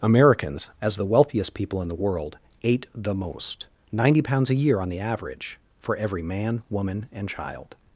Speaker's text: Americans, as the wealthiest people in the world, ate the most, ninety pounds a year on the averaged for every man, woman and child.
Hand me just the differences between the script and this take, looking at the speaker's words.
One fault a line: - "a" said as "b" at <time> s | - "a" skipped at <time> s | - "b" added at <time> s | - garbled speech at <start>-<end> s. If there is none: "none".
- "averaged" said as "average" at 5.0 s